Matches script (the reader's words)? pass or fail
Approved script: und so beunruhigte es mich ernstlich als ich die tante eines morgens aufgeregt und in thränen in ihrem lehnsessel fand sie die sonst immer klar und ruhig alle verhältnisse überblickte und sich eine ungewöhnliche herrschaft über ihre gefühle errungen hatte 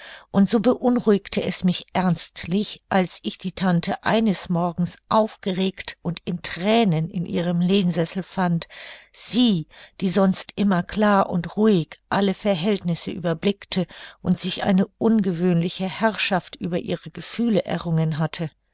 pass